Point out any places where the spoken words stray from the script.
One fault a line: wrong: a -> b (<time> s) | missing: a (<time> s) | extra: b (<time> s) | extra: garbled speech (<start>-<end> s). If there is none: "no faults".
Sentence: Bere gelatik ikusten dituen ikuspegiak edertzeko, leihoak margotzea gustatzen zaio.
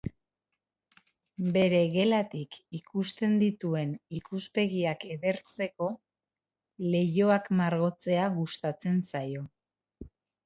no faults